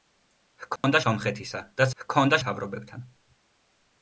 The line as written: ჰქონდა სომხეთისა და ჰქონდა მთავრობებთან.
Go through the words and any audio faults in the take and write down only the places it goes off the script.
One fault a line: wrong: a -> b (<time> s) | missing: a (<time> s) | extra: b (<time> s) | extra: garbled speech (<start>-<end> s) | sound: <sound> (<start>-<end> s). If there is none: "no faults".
sound: dropout (0.8-0.8 s)